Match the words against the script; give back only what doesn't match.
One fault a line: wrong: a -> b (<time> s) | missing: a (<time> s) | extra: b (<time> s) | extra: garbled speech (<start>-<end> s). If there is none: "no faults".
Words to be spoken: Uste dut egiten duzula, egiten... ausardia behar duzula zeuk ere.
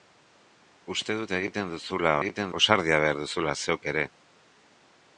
no faults